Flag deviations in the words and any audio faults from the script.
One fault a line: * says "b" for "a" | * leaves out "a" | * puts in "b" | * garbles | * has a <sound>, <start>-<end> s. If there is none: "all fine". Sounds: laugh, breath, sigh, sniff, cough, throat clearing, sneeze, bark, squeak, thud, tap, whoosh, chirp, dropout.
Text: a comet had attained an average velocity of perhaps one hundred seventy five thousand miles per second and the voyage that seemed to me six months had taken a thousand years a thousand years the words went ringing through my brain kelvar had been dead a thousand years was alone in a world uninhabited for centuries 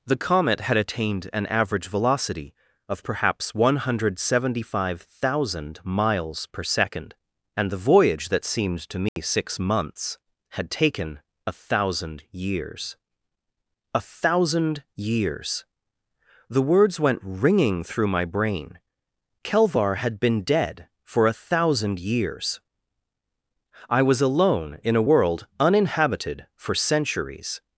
* says "the" for "a"
* has a dropout, 9.1-9.2 s
* puts in "for"
* puts in "i"